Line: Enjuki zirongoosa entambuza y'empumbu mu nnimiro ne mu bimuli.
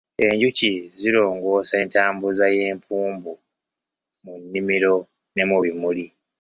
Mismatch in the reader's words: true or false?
false